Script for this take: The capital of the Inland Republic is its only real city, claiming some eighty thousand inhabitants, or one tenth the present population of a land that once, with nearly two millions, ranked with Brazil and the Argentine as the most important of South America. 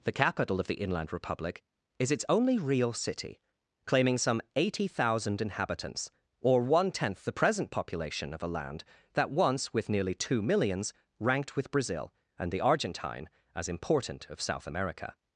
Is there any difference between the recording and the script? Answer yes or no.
yes